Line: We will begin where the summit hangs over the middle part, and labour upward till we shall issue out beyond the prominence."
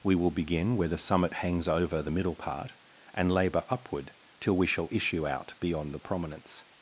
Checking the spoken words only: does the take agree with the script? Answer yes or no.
yes